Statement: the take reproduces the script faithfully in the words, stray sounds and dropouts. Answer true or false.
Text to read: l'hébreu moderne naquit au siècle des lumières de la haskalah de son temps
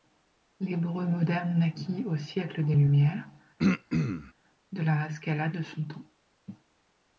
false